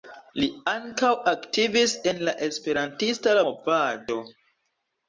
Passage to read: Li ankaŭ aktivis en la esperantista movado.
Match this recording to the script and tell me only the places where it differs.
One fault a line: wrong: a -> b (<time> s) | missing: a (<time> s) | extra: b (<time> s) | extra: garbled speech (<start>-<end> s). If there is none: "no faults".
no faults